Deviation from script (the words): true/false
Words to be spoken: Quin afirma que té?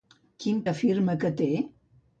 false